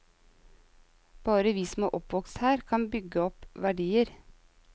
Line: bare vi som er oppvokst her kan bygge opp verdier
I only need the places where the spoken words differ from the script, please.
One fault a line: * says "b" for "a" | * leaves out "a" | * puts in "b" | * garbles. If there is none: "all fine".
all fine